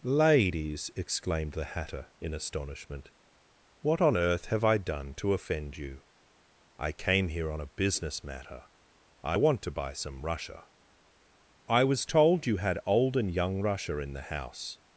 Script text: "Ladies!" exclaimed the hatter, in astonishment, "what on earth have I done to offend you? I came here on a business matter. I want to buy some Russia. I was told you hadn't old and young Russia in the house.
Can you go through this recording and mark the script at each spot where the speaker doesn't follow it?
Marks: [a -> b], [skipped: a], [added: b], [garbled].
"Ladies!" exclaimed the hatter, in astonishment, "what on earth have I done to offend you? I came here on a business matter. I want to buy some Russia. I was told you [hadn't -> had] old and young Russia in the house.